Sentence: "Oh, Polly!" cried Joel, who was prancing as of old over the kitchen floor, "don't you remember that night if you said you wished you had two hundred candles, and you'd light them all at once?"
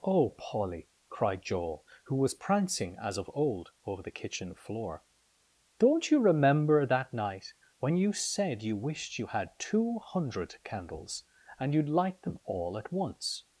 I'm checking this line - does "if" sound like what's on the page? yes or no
no